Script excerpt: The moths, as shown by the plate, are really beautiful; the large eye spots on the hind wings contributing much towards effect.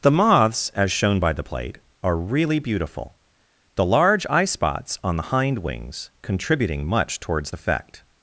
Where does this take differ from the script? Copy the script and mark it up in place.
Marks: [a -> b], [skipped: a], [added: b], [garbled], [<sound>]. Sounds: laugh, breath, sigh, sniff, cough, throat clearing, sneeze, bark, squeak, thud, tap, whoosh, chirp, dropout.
The moths, as shown by the plate, are really beautiful; the large eye spots on the hind wings contributing much towards effect.